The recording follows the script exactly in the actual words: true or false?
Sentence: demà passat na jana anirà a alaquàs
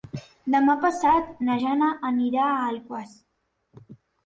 true